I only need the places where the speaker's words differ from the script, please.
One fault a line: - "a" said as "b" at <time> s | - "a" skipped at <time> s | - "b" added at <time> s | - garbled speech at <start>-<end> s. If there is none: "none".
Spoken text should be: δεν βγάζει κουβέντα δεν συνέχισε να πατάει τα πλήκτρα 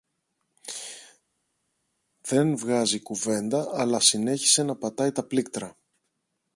- "δεν" said as "αλλά" at 3.7 s